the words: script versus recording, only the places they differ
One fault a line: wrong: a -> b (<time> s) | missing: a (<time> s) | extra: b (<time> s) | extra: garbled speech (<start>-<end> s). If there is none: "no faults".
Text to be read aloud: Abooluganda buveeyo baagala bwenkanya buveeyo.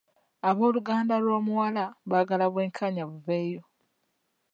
wrong: buveeyo -> lw'omuwala (1.2 s)